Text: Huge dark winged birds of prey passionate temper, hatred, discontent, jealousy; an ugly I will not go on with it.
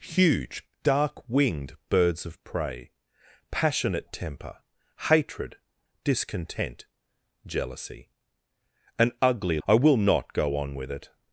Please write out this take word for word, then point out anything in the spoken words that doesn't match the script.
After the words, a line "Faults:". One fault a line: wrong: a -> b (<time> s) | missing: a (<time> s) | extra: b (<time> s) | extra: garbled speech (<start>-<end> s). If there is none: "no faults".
Huge dark winged birds of prey passionate temper, hatred, discontent, jealousy; an ugly I will not go on with it.
Faults:
no faults